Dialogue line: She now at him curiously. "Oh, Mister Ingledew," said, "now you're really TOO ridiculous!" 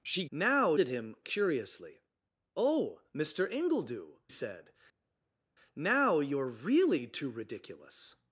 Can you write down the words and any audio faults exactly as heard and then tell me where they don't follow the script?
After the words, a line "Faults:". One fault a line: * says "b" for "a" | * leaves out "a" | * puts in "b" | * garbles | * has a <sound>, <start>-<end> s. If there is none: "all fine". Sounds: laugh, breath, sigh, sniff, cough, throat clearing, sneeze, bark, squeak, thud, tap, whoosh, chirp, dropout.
She now at him curiously. "Oh, Mister Ingledew," said, "now you're really TOO ridiculous!"
Faults:
all fine